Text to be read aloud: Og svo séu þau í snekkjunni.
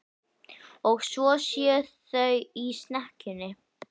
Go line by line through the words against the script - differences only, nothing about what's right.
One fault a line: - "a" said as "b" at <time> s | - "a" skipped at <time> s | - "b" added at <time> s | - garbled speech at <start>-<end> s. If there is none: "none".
none